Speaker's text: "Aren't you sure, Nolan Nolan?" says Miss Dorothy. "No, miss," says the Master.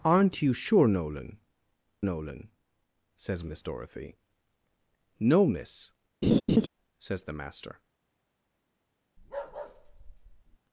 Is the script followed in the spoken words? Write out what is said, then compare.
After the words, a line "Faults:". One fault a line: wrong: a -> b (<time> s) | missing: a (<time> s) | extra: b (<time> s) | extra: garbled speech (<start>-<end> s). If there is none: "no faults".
"Aren't you sure, Nolan Nolan?" says Miss Dorothy. "No, miss," says the Master.
Faults:
no faults